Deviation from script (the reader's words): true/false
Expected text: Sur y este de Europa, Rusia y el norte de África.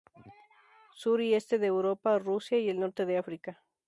false